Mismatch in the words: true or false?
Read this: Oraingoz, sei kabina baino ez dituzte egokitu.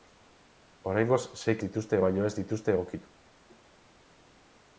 true